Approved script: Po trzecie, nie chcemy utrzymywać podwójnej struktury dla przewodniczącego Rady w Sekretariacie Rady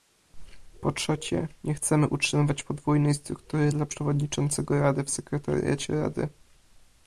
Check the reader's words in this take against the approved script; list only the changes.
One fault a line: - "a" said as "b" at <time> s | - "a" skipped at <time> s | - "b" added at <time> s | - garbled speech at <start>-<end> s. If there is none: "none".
none